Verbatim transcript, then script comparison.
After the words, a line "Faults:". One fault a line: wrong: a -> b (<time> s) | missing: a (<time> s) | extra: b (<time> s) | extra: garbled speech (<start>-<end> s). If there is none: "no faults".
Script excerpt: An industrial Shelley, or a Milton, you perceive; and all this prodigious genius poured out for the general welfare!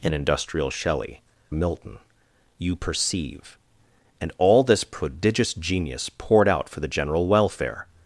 An industrial Shelley, a Milton, you perceive; and all this prodigious genius poured out for the general welfare!
Faults:
missing: or (1.2 s)